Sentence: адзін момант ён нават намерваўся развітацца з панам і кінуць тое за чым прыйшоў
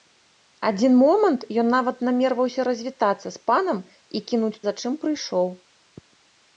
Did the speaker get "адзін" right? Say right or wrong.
right